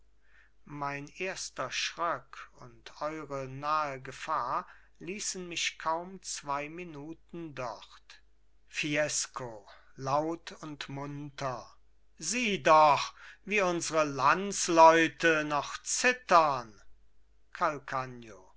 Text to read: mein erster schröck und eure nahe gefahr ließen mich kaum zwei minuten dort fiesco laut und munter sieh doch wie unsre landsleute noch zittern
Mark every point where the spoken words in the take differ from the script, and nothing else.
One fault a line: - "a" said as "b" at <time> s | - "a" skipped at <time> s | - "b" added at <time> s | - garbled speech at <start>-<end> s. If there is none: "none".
none